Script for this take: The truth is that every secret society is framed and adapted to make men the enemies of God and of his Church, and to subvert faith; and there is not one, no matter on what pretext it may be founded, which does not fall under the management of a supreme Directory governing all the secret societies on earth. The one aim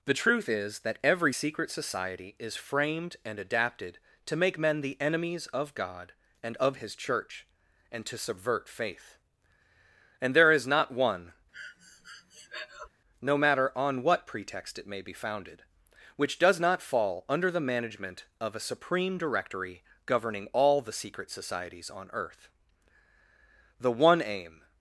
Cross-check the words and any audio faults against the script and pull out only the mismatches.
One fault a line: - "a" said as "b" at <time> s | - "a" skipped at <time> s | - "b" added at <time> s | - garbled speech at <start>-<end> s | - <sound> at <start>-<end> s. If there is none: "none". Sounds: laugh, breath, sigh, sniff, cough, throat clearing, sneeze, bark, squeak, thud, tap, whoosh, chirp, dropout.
- breath at 11.5-12.9 s